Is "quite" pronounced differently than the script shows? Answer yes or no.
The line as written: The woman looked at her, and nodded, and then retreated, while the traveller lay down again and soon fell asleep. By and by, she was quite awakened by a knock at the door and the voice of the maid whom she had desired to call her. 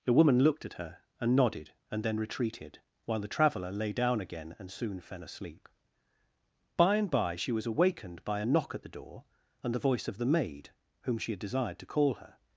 yes